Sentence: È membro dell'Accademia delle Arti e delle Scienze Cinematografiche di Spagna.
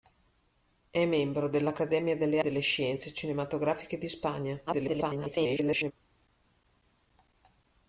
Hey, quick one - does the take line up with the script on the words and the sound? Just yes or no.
no